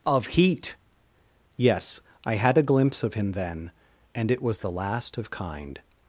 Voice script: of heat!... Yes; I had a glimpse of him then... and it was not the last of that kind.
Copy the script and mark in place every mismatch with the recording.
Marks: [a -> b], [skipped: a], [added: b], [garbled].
of heat!... Yes; I had a glimpse of him then... and it was [skipped: not] the last of [skipped: that] kind.